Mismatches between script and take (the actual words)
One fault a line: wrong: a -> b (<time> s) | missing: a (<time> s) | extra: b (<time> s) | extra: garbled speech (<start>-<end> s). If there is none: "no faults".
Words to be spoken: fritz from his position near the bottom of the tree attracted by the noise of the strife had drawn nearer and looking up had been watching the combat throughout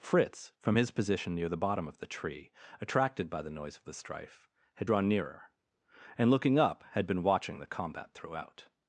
no faults